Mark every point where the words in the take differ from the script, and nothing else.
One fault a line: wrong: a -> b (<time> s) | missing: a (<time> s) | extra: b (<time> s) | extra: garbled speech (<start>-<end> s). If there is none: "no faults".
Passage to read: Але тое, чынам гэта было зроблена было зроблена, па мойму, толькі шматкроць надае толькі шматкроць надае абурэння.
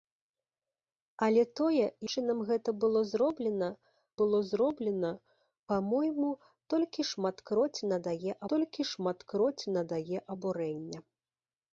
no faults